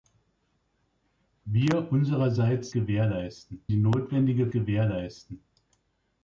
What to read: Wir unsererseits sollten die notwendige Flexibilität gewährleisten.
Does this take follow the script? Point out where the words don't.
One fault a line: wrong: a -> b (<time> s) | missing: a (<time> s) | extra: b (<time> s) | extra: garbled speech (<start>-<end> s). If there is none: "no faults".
wrong: sollten -> gewährleisten (2.7 s)
missing: Flexibilität (4.5 s)